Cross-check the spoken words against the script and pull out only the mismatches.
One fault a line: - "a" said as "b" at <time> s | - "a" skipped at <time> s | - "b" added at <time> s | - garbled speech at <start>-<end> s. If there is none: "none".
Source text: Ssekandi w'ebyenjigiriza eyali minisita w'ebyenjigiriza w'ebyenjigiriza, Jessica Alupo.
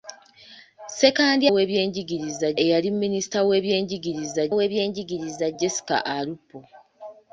none